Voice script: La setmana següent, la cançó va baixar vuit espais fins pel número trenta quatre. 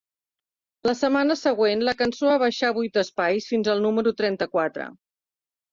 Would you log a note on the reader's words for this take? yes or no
yes